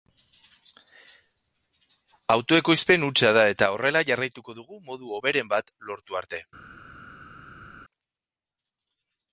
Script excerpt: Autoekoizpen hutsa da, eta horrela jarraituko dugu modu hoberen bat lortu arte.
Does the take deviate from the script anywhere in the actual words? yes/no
no